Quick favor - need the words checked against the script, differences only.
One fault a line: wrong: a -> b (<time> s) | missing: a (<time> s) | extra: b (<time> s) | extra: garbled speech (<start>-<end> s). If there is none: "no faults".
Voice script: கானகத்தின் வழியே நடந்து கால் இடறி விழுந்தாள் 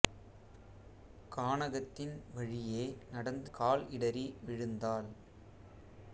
no faults